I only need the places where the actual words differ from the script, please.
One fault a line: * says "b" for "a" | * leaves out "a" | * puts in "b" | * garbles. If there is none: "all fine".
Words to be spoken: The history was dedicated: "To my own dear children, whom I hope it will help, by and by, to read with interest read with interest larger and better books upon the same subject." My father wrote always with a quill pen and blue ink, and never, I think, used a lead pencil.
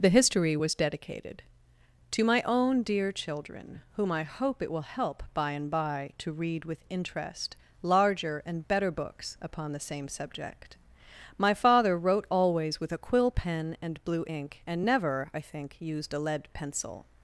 * leaves out "read with interest"